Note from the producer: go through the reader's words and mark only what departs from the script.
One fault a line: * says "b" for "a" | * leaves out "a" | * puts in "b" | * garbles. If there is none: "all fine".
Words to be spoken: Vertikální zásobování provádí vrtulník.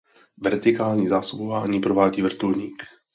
all fine